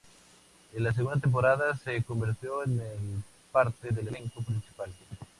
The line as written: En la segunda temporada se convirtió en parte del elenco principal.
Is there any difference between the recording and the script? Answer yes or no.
no